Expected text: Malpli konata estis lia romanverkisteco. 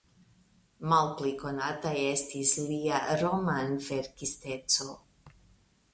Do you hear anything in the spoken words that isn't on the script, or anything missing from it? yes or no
no